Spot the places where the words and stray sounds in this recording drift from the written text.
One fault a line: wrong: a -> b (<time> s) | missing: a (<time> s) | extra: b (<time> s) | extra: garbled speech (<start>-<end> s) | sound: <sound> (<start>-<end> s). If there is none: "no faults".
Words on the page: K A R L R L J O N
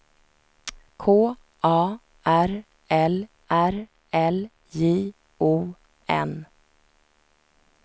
no faults